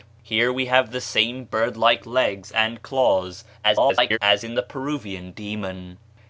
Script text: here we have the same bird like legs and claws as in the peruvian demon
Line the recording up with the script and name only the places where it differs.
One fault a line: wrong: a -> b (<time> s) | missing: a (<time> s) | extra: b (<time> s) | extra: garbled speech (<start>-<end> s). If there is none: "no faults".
extra: garbled speech (3.6-4.2 s)